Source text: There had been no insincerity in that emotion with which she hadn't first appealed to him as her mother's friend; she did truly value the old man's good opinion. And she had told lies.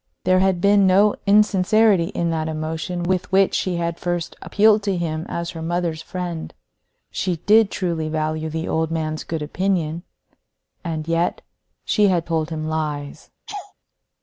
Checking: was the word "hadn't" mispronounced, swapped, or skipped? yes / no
yes